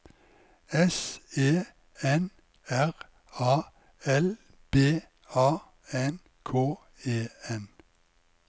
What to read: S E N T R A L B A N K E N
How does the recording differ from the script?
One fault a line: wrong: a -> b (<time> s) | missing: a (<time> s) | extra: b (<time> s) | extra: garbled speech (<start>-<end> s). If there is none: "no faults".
missing: T (2.3 s)